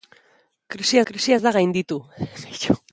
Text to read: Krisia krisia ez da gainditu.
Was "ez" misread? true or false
false